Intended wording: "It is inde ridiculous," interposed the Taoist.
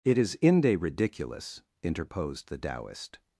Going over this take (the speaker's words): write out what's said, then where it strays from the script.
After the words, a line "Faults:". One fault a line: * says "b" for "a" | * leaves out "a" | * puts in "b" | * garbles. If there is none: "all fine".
"It is inde ridiculous," interposed the Taoist.
Faults:
all fine